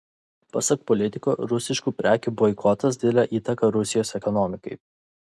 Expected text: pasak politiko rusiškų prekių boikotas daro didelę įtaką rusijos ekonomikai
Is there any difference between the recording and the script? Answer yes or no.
yes